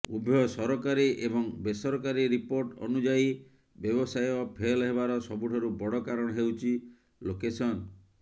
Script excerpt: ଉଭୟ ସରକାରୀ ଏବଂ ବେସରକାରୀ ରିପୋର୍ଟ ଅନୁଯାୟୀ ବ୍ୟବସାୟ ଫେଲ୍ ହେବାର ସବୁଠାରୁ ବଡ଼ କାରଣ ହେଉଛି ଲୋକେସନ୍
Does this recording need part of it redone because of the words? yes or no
no